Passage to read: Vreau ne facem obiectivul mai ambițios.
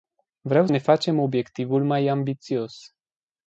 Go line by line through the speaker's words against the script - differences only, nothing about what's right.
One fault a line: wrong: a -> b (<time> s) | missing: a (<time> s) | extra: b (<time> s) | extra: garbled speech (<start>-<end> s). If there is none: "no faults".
no faults